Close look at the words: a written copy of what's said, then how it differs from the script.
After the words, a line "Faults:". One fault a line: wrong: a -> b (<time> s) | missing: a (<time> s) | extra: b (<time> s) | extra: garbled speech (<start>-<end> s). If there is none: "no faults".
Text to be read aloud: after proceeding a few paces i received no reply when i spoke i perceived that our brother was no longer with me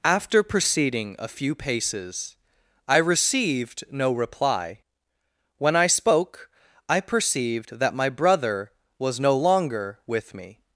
after proceeding a few paces i received no reply when i spoke i perceived that my brother was no longer with me
Faults:
wrong: our -> my (7.9 s)